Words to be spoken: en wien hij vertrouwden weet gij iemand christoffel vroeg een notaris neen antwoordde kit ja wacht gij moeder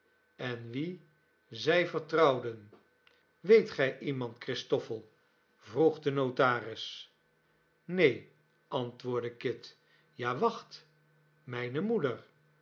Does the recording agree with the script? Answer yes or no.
no